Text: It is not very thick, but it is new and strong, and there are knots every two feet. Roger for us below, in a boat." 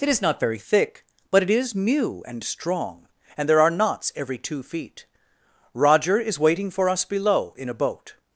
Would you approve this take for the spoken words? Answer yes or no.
no